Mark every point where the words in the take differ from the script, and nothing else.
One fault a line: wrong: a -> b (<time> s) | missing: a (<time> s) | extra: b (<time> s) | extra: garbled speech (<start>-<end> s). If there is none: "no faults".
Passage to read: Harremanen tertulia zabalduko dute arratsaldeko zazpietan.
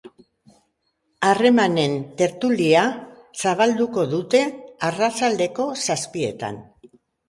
no faults